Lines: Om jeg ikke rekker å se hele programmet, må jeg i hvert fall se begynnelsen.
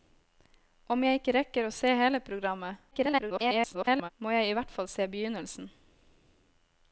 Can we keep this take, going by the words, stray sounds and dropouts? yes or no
no